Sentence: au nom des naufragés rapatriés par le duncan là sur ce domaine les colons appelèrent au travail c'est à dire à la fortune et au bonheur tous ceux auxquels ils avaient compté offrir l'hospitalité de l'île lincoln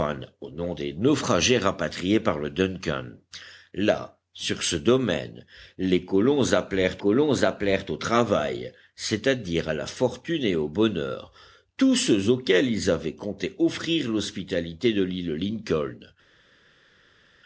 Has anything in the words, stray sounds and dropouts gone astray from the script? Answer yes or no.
yes